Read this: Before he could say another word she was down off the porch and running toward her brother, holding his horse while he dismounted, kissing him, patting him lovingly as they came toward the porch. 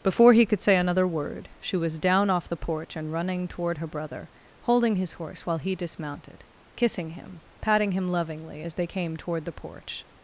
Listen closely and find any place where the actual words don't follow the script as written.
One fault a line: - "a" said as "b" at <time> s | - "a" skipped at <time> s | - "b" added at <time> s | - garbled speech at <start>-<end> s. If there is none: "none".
none